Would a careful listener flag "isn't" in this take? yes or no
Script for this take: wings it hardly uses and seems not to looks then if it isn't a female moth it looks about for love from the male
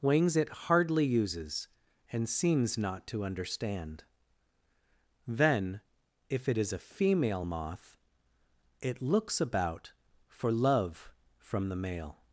yes